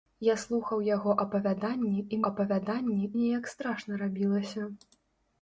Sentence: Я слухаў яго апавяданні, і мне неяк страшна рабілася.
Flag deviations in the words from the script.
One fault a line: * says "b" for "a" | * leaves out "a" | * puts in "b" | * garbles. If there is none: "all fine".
* says "апавяданні" for "мне"